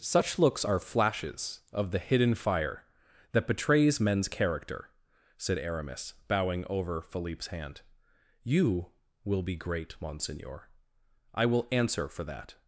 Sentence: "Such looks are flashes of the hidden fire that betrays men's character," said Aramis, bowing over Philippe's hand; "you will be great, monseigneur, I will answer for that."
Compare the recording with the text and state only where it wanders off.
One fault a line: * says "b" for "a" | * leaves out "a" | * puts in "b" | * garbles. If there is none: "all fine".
all fine